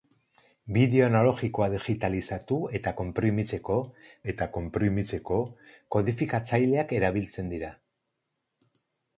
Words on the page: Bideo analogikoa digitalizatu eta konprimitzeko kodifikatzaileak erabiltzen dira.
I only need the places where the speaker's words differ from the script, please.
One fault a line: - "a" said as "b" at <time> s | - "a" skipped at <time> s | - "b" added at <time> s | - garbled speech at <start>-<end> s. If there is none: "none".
- "eta konprimitzeko" added at 4.3 s